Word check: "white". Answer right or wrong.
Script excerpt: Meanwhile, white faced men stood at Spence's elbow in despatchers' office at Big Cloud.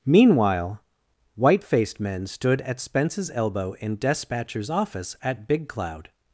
right